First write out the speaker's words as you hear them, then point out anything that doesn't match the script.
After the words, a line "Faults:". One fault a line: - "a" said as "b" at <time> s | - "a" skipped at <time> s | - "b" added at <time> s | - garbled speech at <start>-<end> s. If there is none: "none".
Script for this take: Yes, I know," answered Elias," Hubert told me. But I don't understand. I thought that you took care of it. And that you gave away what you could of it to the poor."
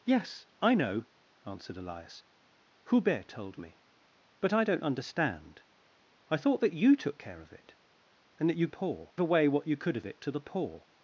Yes, I know," answered Elias," Hubert told me. But I don't understand. I thought that you took care of it. And that you poor away what you could of it to the poor."
Faults:
- "gave" said as "poor" at 8.7 s